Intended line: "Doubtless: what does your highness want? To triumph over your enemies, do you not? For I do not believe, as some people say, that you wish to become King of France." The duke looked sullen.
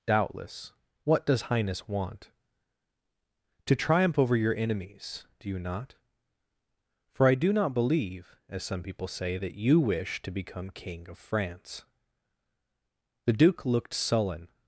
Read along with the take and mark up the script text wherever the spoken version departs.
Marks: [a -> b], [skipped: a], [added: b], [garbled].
"Doubtless: what does [skipped: your] highness want? To triumph over your enemies, do you not? For I do not believe, as some people say, that you wish to become King of France." The duke looked sullen.